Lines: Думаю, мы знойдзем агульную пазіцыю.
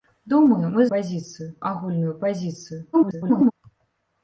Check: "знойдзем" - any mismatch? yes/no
yes